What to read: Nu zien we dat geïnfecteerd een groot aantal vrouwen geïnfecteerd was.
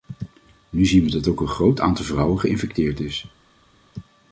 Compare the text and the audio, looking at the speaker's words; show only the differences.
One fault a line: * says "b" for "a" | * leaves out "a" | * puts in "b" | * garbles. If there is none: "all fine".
* says "ook" for "geïnfecteerd"
* says "is" for "was"